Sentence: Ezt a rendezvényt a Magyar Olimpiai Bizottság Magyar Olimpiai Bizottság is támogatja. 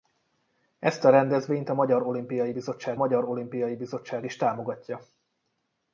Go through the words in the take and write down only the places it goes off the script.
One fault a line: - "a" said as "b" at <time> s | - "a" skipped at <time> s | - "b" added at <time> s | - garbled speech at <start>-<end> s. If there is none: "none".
none